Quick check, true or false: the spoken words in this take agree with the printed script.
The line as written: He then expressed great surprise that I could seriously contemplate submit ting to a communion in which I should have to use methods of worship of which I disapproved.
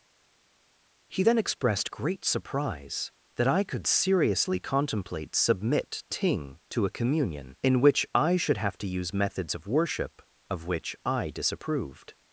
true